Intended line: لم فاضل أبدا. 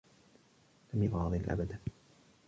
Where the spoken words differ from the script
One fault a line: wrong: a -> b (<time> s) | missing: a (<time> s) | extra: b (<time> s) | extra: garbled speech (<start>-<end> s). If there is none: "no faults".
no faults